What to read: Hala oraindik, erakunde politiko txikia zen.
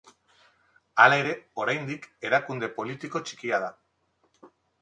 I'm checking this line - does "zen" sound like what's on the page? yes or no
no